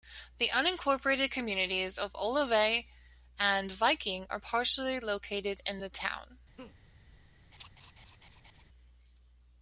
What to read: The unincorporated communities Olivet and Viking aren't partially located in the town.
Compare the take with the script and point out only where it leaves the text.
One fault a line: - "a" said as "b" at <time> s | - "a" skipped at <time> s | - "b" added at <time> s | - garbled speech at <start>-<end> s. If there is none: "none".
- "of" added at 2.0 s
- "aren't" said as "are" at 4.3 s